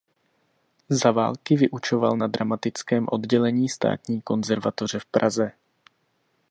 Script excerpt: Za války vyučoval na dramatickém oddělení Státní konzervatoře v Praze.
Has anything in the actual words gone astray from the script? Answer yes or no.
no